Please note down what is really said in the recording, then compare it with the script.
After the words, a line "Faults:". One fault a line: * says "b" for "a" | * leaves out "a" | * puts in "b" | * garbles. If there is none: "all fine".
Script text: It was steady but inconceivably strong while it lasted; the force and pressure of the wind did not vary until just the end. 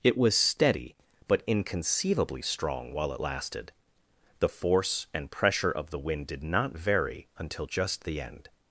It was steady but inconceivably strong while it lasted; the force and pressure of the wind did not vary until just the end.
Faults:
all fine